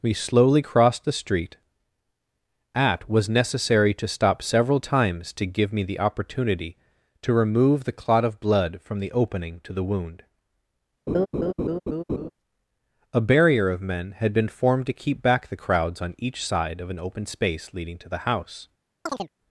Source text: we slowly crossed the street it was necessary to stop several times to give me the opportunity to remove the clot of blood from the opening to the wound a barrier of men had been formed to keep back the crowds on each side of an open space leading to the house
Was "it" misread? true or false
true